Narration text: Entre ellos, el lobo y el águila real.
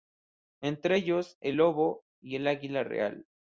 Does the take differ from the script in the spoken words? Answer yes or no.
no